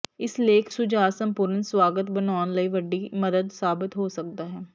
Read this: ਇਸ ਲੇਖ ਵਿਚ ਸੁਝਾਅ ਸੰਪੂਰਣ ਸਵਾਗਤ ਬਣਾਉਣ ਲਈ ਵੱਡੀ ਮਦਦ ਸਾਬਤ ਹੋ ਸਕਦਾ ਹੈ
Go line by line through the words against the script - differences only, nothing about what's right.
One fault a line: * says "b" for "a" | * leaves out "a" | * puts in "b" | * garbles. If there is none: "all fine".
* leaves out "ਵਿਚ"